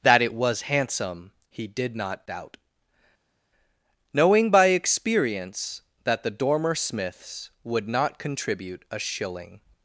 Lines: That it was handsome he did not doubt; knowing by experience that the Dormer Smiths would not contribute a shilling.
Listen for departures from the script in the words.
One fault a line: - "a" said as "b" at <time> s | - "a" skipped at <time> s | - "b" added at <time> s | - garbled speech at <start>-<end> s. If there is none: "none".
none